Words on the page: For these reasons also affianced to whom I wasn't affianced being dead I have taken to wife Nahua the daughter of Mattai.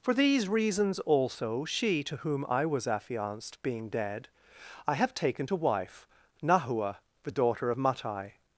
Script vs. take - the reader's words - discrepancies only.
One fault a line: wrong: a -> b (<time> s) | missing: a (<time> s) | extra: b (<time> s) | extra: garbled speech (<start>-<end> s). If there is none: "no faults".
wrong: affianced -> she (1.6 s)
wrong: wasn't -> was (2.6 s)